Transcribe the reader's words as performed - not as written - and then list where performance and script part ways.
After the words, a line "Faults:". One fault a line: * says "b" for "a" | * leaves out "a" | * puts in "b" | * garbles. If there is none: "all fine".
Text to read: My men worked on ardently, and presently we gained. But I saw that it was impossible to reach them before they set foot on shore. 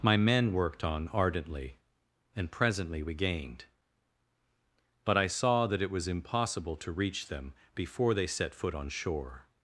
My men worked on ardently, and presently we gained. But I saw that it was impossible to reach them before they set foot on shore.
Faults:
all fine